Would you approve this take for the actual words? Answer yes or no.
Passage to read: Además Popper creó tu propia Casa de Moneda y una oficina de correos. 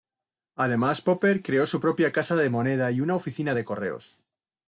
no